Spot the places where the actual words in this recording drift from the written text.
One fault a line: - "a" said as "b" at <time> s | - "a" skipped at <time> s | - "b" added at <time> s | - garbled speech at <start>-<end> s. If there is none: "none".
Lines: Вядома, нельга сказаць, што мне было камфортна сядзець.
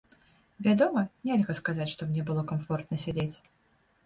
none